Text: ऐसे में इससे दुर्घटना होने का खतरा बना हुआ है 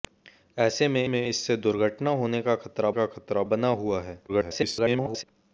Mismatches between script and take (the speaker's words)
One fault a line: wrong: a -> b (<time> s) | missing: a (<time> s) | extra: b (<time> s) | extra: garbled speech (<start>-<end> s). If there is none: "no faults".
extra: में (1.0 s)
extra: का खतरा (2.9 s)
extra: garbled speech (4.3-5.2 s)